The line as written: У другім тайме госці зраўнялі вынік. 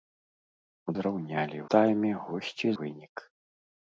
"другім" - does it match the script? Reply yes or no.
no